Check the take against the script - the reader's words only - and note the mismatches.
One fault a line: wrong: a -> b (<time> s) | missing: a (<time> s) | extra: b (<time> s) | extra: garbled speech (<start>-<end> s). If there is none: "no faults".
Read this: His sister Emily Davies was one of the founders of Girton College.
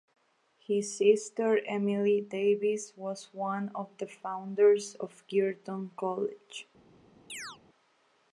no faults